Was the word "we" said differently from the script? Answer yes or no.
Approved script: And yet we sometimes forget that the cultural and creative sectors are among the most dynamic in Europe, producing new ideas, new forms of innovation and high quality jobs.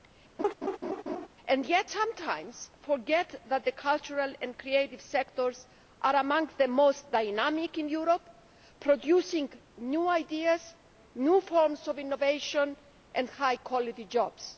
yes